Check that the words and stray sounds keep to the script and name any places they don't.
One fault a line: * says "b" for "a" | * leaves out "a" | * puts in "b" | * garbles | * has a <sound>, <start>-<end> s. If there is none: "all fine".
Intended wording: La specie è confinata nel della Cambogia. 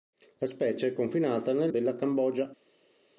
all fine